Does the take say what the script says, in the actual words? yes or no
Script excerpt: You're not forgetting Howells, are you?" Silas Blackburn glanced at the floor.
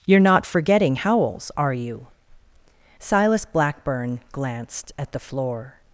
yes